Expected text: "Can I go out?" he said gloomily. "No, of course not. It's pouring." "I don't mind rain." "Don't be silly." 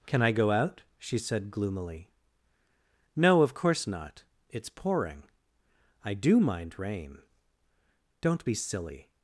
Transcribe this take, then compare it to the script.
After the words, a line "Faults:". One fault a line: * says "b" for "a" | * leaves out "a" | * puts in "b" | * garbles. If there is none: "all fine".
"Can I go out?" she said gloomily. "No, of course not. It's pouring." "I do mind rain." "Don't be silly."
Faults:
* says "she" for "he"
* says "do" for "don't"